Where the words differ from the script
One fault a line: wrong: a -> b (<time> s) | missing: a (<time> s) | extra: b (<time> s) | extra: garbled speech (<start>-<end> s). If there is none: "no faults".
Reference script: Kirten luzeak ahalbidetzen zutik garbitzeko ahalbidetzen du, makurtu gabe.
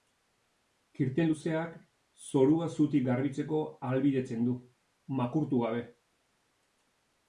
wrong: ahalbidetzen -> zorua (2.3 s)